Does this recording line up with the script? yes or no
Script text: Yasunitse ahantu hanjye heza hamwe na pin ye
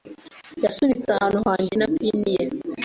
no